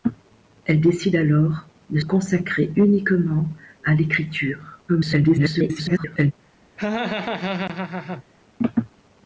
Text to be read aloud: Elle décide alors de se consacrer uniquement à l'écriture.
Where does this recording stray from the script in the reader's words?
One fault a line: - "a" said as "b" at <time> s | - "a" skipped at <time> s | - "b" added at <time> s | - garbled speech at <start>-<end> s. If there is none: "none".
- "se" skipped at 2.0 s
- garbled speech at 4.9-6.3 s